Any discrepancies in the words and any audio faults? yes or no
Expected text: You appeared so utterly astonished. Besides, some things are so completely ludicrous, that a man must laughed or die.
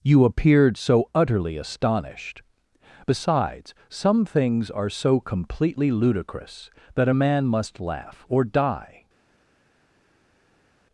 yes